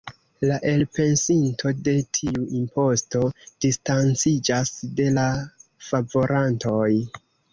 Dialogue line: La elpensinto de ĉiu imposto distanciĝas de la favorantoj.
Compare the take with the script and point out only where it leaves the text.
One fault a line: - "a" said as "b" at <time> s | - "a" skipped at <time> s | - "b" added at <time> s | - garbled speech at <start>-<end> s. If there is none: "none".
- "ĉiu" said as "tiu" at 2.2 s